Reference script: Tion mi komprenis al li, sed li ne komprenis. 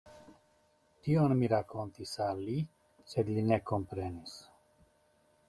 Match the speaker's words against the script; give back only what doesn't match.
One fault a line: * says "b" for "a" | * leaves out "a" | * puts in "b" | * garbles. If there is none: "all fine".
* says "rakontis" for "komprenis"